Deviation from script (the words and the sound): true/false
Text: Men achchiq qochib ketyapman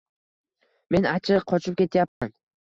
true